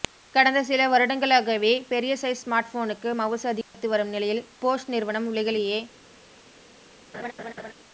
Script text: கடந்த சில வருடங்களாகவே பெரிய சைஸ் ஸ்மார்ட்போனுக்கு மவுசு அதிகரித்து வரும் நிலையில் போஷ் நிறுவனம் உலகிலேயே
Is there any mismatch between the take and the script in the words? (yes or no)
no